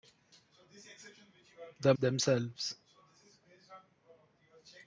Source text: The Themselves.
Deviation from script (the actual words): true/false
false